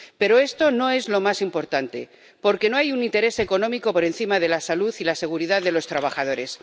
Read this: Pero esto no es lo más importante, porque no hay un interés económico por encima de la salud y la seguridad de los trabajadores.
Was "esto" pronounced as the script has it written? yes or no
yes